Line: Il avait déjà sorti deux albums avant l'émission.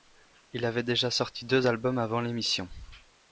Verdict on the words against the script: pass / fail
pass